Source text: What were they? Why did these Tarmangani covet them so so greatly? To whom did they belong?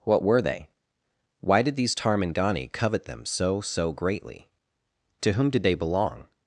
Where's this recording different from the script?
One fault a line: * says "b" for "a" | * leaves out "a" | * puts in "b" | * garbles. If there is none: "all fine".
all fine